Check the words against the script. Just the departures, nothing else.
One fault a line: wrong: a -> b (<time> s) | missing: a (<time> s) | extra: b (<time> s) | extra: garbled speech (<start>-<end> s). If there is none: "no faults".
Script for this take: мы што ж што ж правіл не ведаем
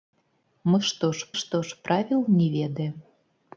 no faults